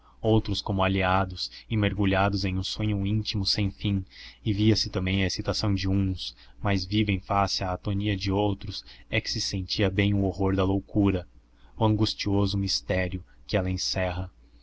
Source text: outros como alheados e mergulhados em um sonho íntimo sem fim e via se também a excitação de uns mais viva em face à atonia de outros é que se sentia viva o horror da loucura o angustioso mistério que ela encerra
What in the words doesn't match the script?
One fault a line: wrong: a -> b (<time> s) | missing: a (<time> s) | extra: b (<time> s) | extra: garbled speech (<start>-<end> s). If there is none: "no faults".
wrong: viva -> bem (9.9 s)